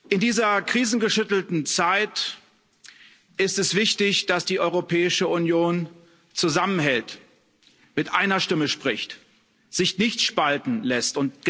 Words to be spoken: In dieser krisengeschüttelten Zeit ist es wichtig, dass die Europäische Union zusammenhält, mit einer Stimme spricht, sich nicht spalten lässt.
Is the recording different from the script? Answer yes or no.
no